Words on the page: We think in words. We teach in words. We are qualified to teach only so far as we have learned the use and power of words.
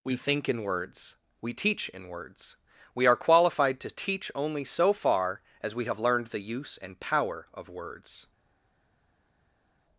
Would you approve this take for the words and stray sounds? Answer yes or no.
yes